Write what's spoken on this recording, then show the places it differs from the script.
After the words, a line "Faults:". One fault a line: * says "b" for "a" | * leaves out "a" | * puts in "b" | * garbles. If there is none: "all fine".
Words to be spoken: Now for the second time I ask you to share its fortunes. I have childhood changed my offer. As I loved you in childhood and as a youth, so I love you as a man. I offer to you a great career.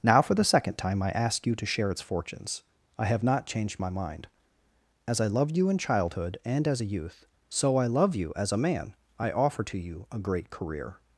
Now for the second time I ask you to share its fortunes. I have not changed my mind. As I loved you in childhood and as a youth, so I love you as a man. I offer to you a great career.
Faults:
* says "not" for "childhood"
* says "mind" for "offer"